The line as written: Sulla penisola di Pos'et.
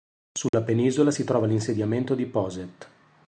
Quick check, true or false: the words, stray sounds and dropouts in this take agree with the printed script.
false